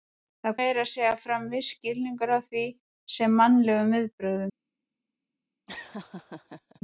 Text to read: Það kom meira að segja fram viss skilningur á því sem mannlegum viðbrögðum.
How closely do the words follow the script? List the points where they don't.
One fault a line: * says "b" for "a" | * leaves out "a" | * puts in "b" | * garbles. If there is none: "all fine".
* leaves out "kom"